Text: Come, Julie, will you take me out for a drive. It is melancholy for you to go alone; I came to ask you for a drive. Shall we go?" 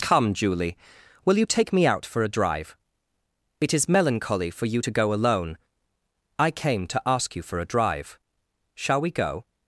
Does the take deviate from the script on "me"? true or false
false